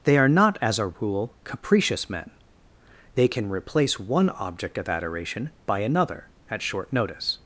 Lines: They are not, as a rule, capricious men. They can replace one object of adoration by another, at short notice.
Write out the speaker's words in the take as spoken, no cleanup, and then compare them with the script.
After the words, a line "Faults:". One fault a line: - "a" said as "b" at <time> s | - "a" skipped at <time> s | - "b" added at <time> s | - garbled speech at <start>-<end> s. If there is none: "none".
They are not, as a rule, capricious men. They can replace one object of adoration by another, at short notice.
Faults:
none